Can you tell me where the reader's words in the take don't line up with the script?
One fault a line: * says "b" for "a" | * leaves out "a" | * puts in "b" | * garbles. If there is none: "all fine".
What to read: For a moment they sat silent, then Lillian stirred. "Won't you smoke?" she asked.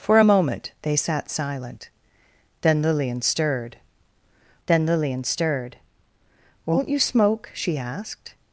* puts in "then Lillian stirred"